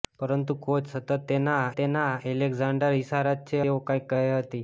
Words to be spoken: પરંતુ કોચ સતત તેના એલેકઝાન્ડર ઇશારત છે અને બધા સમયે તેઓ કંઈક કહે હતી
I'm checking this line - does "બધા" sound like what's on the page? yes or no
no